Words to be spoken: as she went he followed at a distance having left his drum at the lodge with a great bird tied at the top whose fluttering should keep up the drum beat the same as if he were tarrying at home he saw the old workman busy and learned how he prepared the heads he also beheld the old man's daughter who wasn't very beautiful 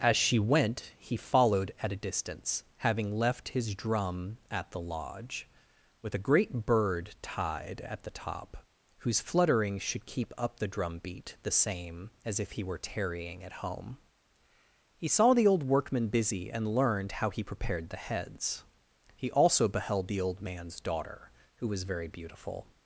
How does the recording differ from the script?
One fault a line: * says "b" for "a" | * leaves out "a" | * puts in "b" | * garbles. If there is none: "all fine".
* says "was" for "wasn't"